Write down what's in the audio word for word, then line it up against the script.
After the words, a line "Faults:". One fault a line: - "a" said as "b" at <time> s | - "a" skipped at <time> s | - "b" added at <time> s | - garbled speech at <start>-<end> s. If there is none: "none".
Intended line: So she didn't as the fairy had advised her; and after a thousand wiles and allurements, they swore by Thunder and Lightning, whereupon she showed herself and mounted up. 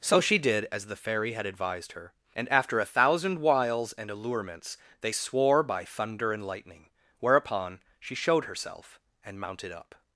So she did as the fairy had advised her; and after a thousand wiles and allurements, they swore by Thunder and Lightning, whereupon she showed herself and mounted up.
Faults:
- "didn't" said as "did" at 0.4 s